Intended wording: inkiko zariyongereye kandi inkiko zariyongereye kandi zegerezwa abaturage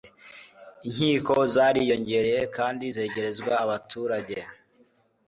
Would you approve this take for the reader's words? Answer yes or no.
no